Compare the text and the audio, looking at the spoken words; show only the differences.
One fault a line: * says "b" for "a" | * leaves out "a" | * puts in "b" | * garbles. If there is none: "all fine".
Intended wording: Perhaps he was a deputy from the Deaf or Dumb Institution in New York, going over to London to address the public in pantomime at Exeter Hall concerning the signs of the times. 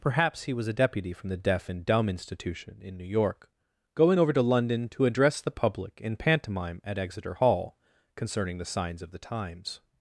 * says "and" for "or"